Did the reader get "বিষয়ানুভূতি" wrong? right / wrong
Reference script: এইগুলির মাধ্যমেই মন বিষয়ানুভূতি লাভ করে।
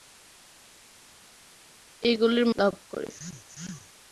wrong